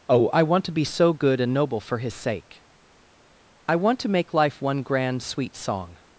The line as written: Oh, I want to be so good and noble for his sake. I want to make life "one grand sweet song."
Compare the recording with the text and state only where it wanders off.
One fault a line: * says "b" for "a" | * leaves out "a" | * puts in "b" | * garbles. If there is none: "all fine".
all fine